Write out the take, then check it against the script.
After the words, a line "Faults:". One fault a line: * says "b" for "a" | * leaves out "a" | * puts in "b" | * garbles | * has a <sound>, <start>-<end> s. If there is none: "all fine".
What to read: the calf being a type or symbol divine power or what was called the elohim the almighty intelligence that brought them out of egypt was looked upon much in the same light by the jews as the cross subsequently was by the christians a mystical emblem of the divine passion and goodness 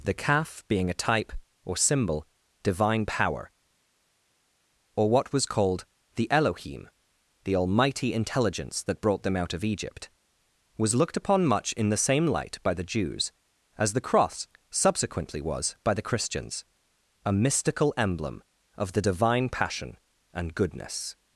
the calf being a type or symbol divine power or what was called the elohim the almighty intelligence that brought them out of egypt was looked upon much in the same light by the jews as the cross subsequently was by the christians a mystical emblem of the divine passion and goodness
Faults:
all fine